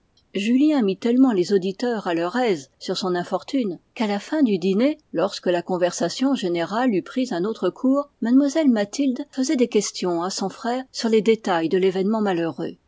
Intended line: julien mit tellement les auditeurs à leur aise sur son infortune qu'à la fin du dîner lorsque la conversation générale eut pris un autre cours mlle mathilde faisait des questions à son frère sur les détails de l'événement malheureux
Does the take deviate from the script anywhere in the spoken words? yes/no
no